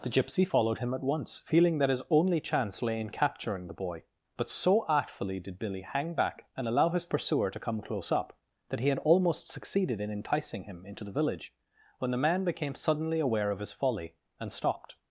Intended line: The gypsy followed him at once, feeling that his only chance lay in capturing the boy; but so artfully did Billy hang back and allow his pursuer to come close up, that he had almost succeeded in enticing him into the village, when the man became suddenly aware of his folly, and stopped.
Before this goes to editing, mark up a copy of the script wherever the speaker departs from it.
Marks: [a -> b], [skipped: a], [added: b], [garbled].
The gypsy followed him at once, feeling that his only chance lay in capturing the boy; but so artfully did Billy hang back and allow his pursuer to come close up, that he had almost succeeded in enticing him into the village, when the man became suddenly aware of his folly, and stopped.